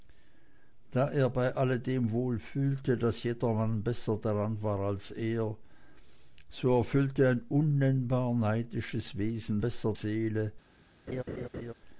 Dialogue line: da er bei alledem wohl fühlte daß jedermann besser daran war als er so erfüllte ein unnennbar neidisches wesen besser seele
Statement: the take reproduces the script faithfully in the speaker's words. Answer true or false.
true